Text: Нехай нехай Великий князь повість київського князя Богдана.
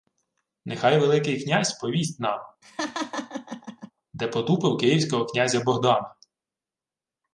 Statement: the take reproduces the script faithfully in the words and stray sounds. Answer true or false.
false